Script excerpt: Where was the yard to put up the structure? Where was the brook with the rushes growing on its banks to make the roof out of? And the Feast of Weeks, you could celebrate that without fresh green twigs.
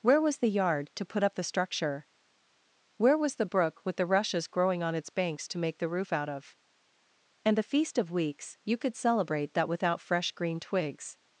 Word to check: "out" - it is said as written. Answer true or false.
true